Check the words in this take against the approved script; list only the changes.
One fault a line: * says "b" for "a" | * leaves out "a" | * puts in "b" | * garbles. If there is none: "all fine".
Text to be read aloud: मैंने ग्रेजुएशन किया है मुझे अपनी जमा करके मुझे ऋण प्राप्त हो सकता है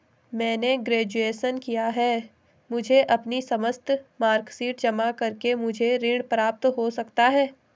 * puts in "समस्त मार्कशीट"